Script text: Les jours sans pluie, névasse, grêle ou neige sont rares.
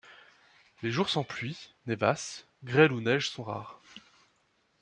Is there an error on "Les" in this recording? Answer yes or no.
no